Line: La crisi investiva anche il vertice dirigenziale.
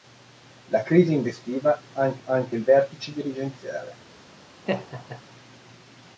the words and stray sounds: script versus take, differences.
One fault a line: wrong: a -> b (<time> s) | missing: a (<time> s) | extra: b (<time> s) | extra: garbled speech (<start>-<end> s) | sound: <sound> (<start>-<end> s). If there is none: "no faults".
extra: anche (2.2 s)
sound: laugh (4.6-5.2 s)